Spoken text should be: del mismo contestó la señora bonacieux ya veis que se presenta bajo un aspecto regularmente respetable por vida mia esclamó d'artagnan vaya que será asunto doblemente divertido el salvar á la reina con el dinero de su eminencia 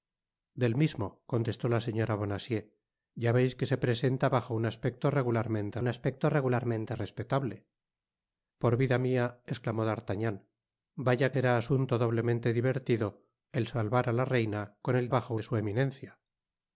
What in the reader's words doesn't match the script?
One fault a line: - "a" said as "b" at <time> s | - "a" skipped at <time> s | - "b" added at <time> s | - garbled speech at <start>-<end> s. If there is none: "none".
- "un aspecto regularmente" added at 5.8 s
- "que" skipped at 11.3 s
- "dinero" said as "bajo" at 15.1 s